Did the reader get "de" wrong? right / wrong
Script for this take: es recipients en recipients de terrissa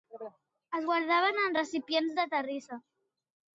right